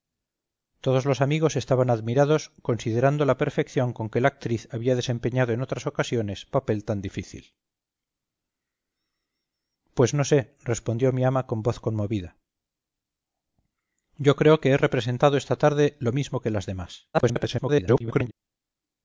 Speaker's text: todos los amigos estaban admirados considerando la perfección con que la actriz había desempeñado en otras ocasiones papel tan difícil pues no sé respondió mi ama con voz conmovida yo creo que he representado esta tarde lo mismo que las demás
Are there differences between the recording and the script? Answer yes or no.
yes